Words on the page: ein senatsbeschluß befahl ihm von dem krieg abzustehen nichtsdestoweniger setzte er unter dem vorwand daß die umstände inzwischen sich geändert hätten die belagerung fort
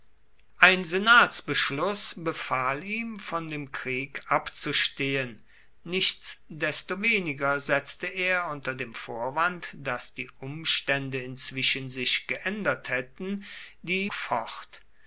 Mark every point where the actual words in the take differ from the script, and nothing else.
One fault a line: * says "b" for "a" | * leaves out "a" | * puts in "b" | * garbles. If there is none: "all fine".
* leaves out "belagerung"